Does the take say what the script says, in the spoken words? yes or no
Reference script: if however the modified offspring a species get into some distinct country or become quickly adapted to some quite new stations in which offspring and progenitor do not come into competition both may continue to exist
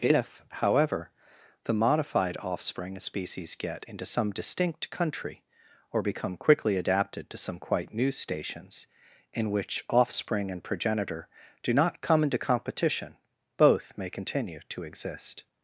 yes